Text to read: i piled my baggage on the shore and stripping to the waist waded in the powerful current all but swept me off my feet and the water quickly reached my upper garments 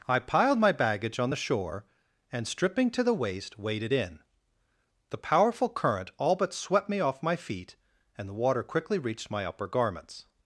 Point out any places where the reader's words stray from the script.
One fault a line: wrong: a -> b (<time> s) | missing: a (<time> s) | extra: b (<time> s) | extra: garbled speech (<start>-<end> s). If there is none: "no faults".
no faults